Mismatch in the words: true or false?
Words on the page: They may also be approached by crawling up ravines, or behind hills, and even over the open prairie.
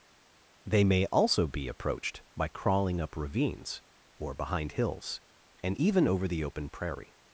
false